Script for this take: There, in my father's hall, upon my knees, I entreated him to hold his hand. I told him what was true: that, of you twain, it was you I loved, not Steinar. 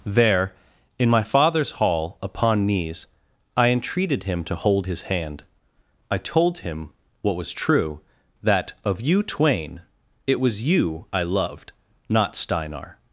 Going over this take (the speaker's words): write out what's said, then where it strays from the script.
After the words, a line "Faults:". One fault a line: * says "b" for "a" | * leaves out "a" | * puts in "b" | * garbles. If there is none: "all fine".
There, in my father's hall, upon knees, I entreated him to hold his hand. I told him what was true: that, of you twain, it was you I loved, not Steinar.
Faults:
* leaves out "my"